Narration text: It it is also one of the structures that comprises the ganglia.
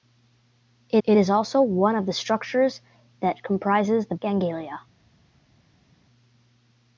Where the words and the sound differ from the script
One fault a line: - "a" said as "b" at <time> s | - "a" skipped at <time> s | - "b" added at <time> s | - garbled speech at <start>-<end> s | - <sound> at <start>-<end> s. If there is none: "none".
none